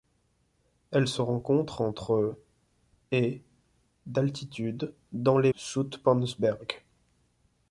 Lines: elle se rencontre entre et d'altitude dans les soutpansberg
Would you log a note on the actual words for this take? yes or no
no